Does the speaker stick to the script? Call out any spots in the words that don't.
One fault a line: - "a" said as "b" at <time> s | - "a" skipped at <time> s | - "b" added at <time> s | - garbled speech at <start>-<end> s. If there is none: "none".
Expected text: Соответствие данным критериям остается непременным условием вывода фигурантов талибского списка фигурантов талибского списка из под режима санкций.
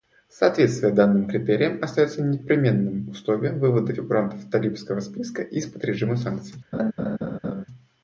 - "фигурантов талибского списка" skipped at 5.4 s